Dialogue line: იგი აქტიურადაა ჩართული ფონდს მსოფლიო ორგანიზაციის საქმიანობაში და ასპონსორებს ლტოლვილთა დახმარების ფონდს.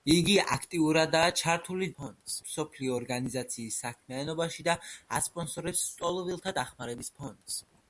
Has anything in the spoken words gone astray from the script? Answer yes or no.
no